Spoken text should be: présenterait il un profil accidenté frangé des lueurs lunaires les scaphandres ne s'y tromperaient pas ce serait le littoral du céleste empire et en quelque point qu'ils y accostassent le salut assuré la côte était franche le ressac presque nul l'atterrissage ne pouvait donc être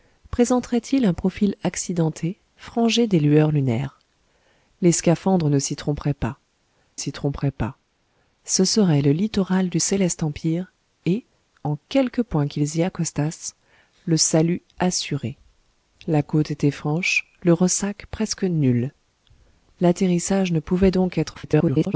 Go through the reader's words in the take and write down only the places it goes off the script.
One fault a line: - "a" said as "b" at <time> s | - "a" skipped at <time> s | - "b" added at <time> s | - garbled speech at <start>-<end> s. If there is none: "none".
- "s'y tromperaient pas" added at 6.9 s
- garbled speech at 21.3-21.9 s